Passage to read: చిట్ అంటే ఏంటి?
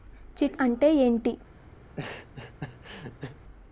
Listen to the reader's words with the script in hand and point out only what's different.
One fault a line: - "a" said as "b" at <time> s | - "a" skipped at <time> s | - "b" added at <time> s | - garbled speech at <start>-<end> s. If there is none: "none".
none